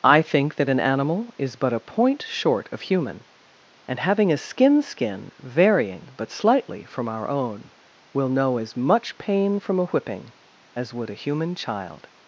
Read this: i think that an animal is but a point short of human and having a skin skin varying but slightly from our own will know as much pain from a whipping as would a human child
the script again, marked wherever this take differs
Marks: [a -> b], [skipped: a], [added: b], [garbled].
i think that an animal is but a point short of human and having a skin skin varying but slightly from our own will know as much pain from a whipping as would a human child